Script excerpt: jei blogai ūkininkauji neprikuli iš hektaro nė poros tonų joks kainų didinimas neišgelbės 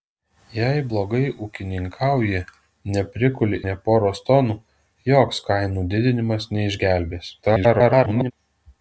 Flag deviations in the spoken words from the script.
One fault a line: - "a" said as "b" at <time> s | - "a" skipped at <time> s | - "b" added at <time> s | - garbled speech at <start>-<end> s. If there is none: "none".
- "iš hektaro" skipped at 3.6 s
- garbled speech at 7.4-8.3 s